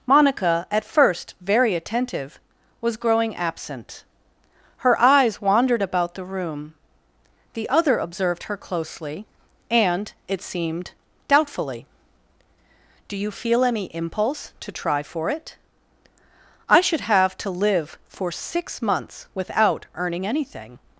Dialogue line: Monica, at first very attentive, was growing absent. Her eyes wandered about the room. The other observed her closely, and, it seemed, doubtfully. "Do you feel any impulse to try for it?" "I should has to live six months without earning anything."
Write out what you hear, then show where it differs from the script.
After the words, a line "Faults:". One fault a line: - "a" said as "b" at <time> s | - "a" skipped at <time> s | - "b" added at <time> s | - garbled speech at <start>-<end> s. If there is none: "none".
Monica, at first very attentive, was growing absent. Her eyes wandered about the room. The other observed her closely, and, it seemed, doubtfully. "Do you feel any impulse to try for it?" "I should have to live for six months without earning anything."
Faults:
- "has" said as "have" at 17.0 s
- "for" added at 18.1 s